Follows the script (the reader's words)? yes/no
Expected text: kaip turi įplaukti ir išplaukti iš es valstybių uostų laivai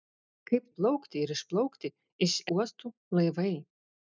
no